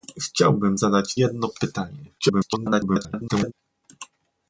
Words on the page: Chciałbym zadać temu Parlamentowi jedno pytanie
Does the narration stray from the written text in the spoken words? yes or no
yes